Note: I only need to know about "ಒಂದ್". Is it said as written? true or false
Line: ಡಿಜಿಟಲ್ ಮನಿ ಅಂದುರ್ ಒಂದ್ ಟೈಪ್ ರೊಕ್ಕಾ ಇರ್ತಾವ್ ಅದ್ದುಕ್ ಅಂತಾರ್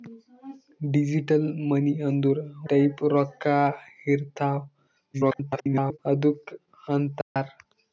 false